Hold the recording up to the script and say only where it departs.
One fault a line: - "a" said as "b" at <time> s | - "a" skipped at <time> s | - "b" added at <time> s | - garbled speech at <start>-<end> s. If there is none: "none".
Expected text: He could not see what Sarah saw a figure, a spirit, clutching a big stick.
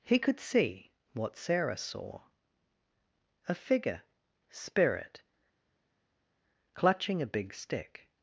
- "not" skipped at 0.4 s
- "a" skipped at 4.0 s